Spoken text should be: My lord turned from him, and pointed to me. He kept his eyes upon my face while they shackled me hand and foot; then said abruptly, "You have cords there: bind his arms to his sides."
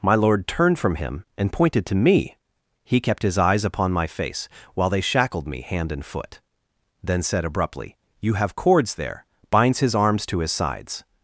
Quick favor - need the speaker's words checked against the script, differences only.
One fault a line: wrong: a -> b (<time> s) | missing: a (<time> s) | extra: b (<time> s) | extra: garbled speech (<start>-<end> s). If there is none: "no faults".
wrong: bind -> binds (9.5 s)